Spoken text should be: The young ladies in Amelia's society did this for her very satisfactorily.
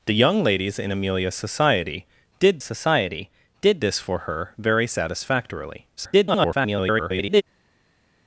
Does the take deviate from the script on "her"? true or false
false